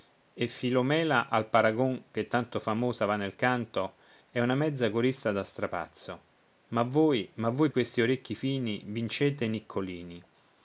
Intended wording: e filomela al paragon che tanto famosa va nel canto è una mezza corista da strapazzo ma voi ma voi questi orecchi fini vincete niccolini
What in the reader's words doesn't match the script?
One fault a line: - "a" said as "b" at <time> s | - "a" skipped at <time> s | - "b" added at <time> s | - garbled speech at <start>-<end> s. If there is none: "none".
none